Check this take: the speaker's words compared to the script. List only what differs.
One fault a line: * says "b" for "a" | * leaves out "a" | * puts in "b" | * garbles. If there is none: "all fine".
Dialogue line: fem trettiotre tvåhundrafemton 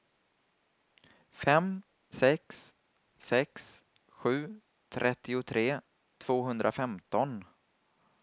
* puts in "sex sex sju"